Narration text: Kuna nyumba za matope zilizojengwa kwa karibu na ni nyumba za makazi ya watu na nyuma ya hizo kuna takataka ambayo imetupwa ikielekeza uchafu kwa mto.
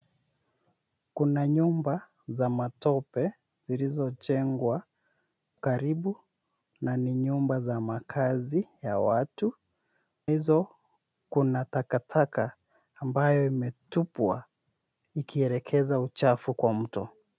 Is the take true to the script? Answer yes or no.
no